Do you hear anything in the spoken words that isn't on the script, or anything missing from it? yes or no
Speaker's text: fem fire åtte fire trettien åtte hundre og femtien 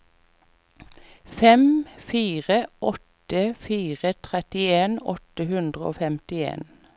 no